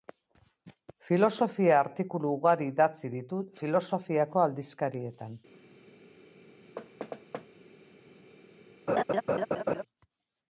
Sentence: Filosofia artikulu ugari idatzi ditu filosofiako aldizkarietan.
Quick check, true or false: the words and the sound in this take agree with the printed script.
false